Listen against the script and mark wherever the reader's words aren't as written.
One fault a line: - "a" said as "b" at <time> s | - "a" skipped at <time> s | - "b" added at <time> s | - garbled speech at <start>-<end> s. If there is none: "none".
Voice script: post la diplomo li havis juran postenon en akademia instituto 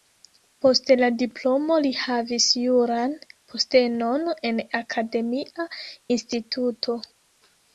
none